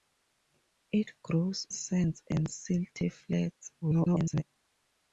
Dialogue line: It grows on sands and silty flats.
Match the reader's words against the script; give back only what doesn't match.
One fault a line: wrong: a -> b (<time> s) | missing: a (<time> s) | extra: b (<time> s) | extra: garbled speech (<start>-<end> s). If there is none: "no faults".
missing: on (1.7 s)
extra: garbled speech (3.8-4.4 s)